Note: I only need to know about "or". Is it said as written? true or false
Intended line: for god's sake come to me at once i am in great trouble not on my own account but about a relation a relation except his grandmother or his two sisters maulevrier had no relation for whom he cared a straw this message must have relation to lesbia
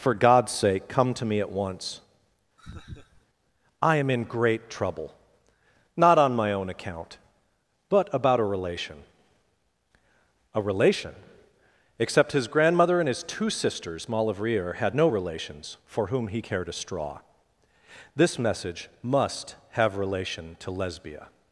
false